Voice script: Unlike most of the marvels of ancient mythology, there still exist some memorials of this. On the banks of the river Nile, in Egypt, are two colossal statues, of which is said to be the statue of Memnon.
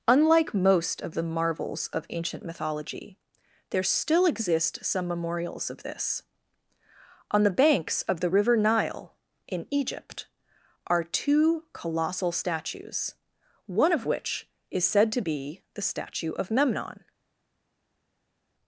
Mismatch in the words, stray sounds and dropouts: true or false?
true